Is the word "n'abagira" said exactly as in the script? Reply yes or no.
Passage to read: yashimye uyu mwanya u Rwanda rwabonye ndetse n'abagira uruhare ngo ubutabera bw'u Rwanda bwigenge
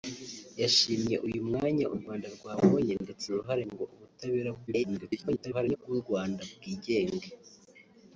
no